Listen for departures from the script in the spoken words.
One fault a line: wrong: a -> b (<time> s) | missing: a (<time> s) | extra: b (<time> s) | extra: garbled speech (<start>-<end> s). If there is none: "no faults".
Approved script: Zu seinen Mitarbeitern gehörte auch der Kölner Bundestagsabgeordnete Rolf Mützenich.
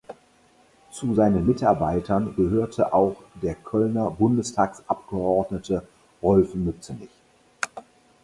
no faults